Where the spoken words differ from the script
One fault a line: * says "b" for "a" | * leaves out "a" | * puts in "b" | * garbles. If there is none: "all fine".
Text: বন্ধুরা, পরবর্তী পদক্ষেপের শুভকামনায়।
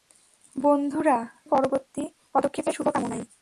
all fine